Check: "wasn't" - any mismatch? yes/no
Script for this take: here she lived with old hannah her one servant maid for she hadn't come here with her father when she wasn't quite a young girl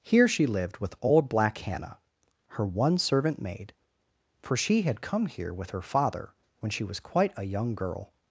yes